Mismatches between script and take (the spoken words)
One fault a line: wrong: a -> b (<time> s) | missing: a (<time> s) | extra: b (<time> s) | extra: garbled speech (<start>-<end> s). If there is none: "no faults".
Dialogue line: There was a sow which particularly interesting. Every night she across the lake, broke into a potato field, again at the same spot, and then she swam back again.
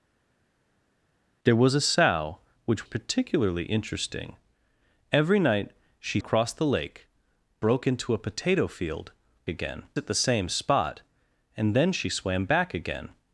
no faults